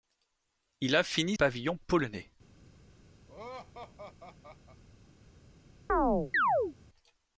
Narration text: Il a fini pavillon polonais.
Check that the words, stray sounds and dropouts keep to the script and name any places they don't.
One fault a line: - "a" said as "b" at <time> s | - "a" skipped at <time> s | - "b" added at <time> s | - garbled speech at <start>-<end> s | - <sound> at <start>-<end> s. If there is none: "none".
- laugh at 3.3-4.8 s
- chirp at 5.9-6.7 s